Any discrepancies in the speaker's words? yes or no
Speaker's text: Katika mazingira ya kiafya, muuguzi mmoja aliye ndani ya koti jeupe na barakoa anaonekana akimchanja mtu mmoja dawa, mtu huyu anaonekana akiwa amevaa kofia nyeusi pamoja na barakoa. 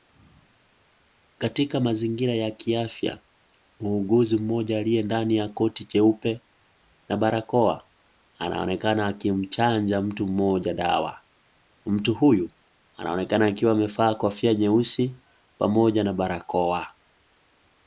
no